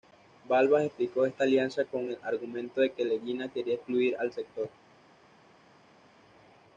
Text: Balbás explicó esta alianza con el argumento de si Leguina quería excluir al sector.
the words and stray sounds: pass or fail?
fail